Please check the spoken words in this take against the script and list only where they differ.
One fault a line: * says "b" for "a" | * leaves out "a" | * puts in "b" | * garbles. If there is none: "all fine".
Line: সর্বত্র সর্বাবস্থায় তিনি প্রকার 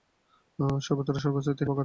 all fine